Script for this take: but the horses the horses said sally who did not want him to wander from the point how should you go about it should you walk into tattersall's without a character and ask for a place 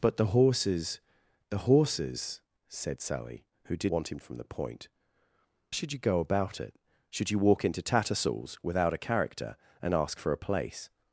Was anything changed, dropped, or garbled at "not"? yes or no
yes